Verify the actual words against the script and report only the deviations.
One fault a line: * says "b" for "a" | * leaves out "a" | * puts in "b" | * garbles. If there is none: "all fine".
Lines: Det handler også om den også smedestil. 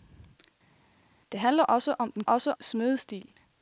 all fine